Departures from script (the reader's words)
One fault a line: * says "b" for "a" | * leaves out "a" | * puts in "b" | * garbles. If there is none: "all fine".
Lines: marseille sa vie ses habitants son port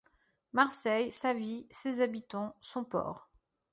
all fine